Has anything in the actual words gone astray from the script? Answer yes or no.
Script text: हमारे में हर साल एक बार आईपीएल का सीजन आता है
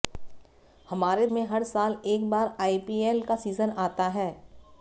no